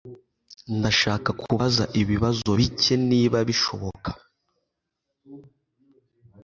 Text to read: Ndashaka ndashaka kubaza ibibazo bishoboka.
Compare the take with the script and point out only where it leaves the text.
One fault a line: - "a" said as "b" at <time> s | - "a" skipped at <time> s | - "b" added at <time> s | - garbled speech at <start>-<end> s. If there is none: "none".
- "ndashaka" skipped at 1.3 s
- "bike niba" added at 2.6 s